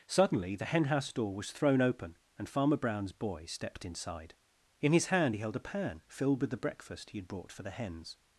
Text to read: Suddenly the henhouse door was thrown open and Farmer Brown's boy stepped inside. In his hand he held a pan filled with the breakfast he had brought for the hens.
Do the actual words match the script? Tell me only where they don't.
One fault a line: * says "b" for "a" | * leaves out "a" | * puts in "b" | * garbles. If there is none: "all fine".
all fine